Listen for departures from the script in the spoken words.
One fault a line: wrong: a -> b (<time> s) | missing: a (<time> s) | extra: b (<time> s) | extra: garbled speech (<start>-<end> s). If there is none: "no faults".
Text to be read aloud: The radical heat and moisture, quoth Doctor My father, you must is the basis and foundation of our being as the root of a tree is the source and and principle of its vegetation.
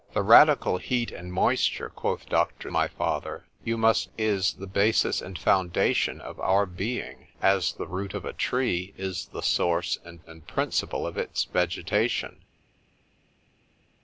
no faults